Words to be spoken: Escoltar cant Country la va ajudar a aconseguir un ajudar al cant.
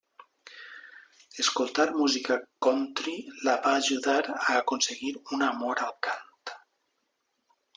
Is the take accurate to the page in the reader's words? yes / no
no